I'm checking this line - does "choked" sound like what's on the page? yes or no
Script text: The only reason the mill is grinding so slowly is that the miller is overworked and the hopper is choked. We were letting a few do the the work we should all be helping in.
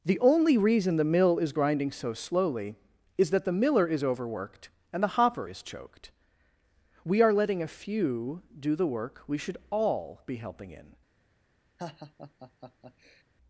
yes